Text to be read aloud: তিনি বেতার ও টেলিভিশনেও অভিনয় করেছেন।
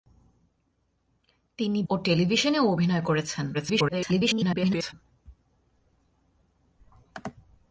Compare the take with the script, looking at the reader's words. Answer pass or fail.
fail